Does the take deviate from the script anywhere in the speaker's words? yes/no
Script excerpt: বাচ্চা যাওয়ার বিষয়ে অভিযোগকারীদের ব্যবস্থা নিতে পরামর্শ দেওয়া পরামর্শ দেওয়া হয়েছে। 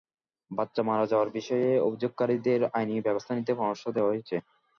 yes